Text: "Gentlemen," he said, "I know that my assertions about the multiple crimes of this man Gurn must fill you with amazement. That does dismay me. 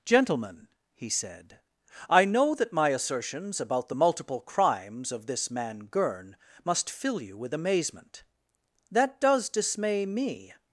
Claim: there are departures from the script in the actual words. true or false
false